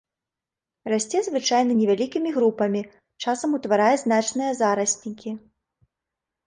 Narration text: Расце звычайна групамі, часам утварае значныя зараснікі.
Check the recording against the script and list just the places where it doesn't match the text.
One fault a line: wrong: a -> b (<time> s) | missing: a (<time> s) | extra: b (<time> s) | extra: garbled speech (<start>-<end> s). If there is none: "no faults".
extra: невялікімі (1.8 s)